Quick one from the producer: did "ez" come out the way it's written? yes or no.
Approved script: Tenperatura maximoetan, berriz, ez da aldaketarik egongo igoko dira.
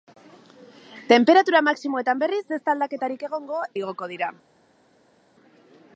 yes